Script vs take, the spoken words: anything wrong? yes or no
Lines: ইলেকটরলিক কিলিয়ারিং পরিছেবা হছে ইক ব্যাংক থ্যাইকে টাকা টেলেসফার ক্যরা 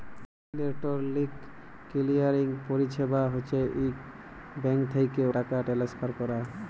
no